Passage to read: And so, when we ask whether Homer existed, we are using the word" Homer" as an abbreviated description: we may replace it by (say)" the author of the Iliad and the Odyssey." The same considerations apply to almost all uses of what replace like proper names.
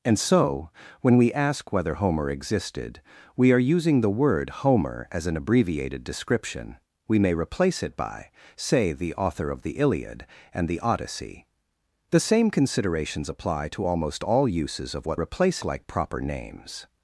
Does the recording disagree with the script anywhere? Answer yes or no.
no